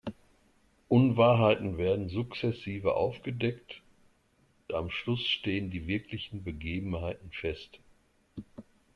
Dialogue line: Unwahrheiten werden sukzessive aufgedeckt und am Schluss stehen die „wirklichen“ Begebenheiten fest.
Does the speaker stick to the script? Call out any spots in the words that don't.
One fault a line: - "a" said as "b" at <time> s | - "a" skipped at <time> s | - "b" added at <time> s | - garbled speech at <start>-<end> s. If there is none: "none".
- "und" skipped at 3.8 s